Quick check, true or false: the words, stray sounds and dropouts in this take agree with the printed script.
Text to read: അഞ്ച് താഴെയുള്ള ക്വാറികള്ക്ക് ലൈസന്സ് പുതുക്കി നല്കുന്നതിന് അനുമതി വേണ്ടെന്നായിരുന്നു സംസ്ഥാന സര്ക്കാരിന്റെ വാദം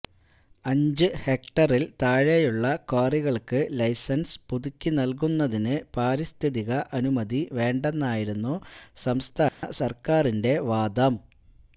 false